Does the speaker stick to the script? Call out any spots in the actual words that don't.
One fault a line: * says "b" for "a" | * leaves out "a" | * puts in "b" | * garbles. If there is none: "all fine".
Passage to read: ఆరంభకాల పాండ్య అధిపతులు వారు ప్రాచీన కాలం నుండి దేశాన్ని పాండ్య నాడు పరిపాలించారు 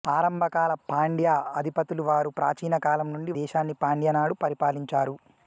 all fine